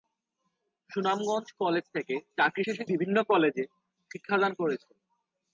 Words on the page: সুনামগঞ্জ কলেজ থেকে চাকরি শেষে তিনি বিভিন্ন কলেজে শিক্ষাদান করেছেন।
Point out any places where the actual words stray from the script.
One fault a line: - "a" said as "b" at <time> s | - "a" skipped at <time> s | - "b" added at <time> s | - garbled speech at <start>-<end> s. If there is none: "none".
- "তিনি" skipped at 2.8 s